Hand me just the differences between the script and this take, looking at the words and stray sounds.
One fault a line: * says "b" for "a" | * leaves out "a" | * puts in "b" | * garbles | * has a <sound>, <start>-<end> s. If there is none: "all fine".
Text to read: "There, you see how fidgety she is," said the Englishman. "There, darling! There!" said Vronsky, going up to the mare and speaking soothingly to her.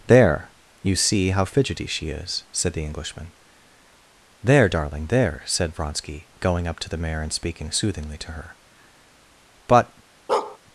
* puts in "But"
* has a bark, 10.3-10.6 s